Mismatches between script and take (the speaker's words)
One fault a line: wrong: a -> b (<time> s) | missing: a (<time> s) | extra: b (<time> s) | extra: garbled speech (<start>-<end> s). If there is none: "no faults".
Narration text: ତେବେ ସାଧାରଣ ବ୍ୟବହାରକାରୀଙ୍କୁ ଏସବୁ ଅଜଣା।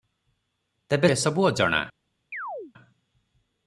missing: ସାଧାରଣ ବ୍ୟବହାରକାରୀଙ୍କୁ (1.1 s)